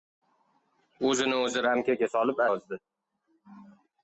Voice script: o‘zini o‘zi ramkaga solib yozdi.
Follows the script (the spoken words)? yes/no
yes